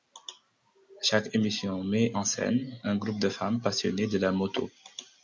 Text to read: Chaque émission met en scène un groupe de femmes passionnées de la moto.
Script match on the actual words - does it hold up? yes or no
yes